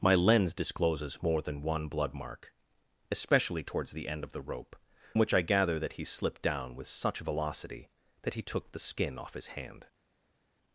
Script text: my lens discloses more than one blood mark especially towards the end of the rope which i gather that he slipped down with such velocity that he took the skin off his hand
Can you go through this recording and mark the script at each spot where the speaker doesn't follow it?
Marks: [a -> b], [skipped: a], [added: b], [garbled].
my lens discloses more than one blood mark especially towards the end of the rope which i gather that he slipped down with such velocity that he took the skin off his hand